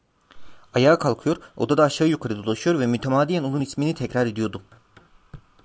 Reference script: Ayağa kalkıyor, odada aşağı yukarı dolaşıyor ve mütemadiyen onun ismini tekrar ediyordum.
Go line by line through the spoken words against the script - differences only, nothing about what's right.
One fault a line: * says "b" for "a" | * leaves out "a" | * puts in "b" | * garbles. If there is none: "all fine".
all fine